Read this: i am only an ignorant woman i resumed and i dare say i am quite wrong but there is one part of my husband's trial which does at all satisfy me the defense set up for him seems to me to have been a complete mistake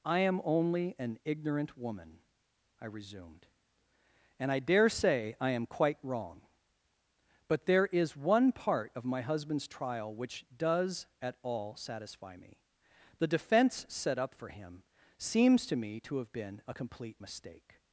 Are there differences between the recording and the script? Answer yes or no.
no